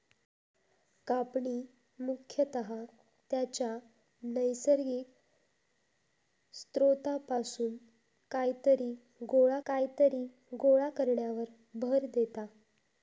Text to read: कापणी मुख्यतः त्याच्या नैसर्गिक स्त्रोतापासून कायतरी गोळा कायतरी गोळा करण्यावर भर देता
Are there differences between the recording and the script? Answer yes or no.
no